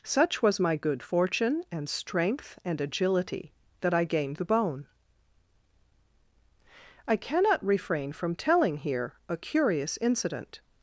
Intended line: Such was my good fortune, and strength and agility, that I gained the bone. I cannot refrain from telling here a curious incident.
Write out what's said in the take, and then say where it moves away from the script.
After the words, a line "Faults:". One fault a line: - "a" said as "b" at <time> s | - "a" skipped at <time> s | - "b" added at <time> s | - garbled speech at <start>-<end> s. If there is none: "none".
Such was my good fortune, and strength and agility, that I gained the bone. I cannot refrain from telling here a curious incident.
Faults:
none